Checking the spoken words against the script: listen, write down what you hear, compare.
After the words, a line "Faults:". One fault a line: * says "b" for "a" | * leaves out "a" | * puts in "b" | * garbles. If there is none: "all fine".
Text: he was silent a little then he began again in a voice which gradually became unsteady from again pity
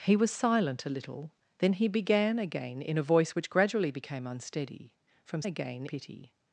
he was silent a little then he began again in a voice which gradually became unsteady from again pity
Faults:
all fine